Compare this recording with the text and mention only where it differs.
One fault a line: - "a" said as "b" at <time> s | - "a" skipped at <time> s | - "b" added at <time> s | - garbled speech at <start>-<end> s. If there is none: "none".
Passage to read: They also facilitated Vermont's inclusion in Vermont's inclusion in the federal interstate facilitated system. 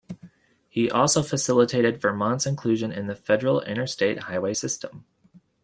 - "They" said as "He" at 0.7 s
- "Vermont's inclusion in" skipped at 3.0 s
- "facilitated" said as "highway" at 4.2 s